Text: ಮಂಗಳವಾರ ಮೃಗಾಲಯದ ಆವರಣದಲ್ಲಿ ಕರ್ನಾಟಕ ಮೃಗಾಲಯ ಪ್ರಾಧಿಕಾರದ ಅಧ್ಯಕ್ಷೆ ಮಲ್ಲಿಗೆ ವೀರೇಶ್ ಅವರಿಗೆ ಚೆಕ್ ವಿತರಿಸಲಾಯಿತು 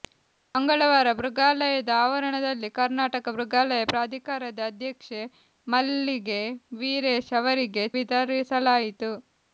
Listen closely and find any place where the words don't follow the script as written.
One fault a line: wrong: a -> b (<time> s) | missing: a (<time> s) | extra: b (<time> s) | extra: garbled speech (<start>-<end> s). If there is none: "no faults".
missing: ಚೆಕ್ (7.8 s)